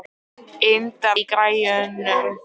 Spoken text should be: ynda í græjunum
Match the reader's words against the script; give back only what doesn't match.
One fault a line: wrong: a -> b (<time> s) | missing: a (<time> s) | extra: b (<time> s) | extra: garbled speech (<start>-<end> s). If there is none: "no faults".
no faults